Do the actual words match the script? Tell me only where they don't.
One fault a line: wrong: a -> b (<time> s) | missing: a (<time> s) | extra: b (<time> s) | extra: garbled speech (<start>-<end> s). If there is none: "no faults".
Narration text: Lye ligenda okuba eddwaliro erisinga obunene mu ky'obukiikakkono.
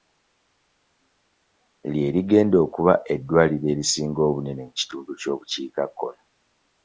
extra: kitundu (4.8 s)